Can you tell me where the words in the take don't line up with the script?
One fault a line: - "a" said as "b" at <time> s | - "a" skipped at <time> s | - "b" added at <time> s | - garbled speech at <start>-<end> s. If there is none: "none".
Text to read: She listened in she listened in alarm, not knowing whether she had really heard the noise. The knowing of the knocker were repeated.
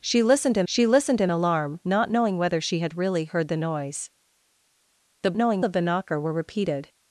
none